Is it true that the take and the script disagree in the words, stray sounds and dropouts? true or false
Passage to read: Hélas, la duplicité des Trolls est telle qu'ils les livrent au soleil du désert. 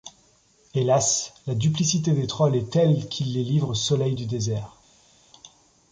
false